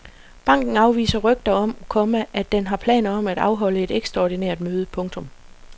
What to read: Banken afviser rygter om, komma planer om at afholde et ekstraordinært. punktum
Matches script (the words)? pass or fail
fail